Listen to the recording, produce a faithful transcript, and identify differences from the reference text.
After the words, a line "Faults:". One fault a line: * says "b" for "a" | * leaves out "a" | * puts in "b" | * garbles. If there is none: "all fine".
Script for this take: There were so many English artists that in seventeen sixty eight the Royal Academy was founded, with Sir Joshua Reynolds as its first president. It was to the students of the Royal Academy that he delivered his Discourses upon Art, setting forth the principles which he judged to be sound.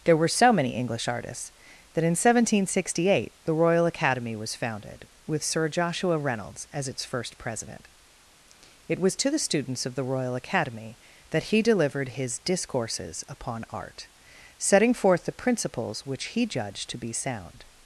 There were so many English artists that in seventeen sixty eight the Royal Academy was founded, with Sir Joshua Reynolds as its first president. It was to the students of the Royal Academy that he delivered his Discourses upon Art, setting forth the principles which he judged to be sound.
Faults:
all fine